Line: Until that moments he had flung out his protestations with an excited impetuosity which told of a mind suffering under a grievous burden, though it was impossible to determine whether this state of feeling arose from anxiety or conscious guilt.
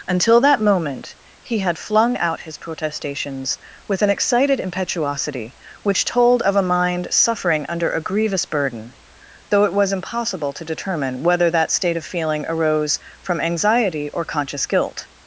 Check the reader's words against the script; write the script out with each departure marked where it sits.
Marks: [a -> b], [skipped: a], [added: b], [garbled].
Until that [moments -> moment] he had flung out his protestations with an excited impetuosity which told of a mind suffering under a grievous burden, though it was impossible to determine whether [this -> that] state of feeling arose from anxiety or conscious guilt.